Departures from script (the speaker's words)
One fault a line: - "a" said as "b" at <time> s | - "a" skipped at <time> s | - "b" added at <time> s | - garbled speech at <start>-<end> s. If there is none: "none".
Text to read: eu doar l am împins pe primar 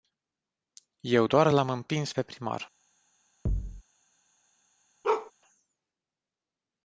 none